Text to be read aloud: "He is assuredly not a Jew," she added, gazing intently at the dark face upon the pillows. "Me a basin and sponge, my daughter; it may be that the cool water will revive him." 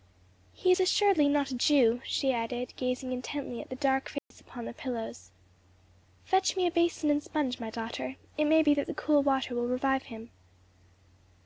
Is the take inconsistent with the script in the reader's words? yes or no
yes